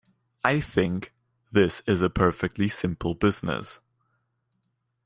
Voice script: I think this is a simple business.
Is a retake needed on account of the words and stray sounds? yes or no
yes